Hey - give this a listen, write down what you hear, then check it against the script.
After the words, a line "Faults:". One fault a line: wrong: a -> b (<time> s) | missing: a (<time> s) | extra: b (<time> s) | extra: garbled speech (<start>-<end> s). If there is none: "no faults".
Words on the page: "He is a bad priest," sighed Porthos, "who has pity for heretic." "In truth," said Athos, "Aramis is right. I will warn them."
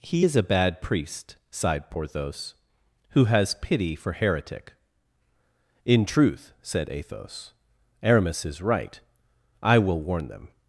"He is a bad priest," sighed Porthos, "who has pity for heretic." "In truth," said Athos, "Aramis is right. I will warn them."
Faults:
no faults